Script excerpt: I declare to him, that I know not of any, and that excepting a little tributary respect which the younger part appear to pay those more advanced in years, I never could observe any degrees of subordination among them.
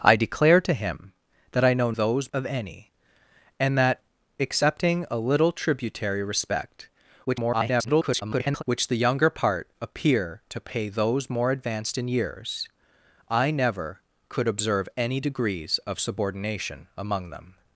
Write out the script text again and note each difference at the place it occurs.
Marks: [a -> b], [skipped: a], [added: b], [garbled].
I declare to him, that I know [not -> those] of any, and that excepting a little tributary respect [garbled] which the younger part appear to pay those more advanced in years, I never could observe any degrees of subordination among them.